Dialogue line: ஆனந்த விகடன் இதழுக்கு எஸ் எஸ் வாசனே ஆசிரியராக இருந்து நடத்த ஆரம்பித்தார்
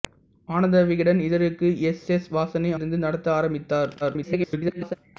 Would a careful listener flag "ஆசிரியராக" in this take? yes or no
yes